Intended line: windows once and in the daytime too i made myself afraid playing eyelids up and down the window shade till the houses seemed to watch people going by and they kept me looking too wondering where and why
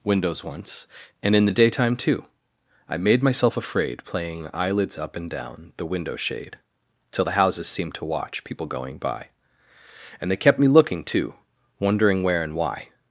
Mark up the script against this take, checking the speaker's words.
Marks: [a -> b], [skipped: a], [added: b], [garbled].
windows once and in the daytime too i made myself afraid playing eyelids up and down the window shade till the houses seemed to watch people going by and they kept me looking too wondering where and why